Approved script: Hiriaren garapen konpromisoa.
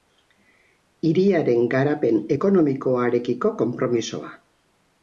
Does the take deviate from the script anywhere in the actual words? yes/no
yes